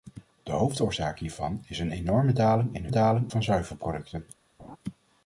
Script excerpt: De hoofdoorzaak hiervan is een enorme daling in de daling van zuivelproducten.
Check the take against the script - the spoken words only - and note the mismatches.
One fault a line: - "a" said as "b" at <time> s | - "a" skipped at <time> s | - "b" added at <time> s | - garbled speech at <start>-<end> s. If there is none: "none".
none